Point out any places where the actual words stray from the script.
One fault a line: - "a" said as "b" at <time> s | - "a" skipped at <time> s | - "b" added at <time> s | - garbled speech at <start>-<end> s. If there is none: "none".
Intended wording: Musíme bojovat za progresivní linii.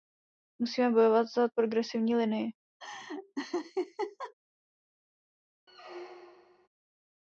none